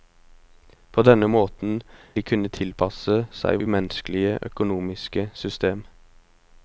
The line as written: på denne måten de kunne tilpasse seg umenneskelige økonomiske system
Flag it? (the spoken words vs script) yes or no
no